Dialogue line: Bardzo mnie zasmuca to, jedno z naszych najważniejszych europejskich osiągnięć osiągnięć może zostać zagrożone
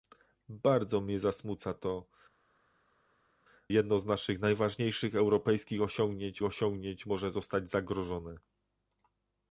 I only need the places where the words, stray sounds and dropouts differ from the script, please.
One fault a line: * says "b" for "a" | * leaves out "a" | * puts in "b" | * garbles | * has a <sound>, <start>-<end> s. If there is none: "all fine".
all fine